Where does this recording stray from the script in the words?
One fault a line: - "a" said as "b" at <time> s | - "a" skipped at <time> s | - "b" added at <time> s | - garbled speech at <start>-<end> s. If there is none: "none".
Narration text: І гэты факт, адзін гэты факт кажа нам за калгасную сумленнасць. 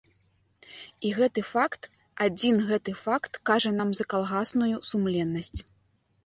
none